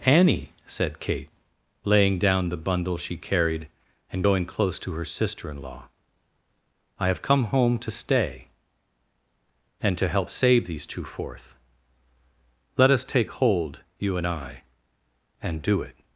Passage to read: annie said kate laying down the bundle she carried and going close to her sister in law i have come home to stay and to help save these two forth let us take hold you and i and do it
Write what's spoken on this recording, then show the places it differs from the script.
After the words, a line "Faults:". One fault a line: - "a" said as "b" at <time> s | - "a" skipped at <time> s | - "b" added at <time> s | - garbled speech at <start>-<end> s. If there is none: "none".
annie said kate laying down the bundle she carried and going close to her sister in law i have come home to stay and to help save these two forth let us take hold you and i and do it
Faults:
none